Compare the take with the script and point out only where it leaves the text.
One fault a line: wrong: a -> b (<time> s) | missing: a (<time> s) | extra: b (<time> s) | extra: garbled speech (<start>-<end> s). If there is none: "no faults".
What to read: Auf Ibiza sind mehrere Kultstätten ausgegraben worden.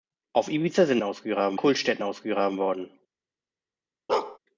wrong: mehrere -> ausgegraben (1.0 s)